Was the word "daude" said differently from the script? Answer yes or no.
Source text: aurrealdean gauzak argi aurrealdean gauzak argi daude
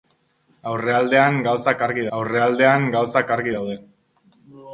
no